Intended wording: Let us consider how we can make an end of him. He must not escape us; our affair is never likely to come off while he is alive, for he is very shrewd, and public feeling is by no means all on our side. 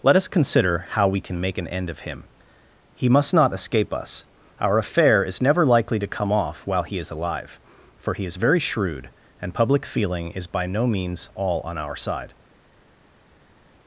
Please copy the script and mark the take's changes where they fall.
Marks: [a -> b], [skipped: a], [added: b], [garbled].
Let us consider how we can make an end of him. He must not escape us; our affair is never likely to come off while he is alive, for he is very shrewd, and public feeling is by no means all on our side.